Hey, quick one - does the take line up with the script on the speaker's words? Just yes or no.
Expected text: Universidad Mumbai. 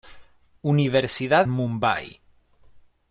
yes